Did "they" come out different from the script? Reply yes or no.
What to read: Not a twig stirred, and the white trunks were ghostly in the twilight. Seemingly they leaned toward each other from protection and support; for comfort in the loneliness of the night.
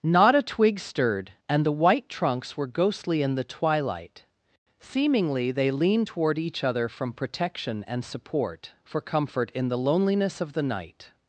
no